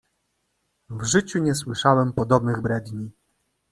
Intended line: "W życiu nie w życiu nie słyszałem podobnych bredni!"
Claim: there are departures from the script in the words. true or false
true